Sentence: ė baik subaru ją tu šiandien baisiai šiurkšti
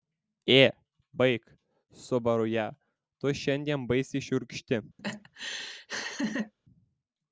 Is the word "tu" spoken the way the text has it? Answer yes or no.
yes